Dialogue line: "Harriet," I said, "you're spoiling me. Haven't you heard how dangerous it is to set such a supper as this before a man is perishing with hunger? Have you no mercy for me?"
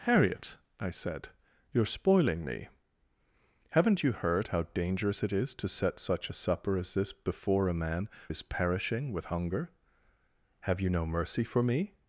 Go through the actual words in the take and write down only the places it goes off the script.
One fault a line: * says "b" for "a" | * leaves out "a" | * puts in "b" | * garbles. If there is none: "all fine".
all fine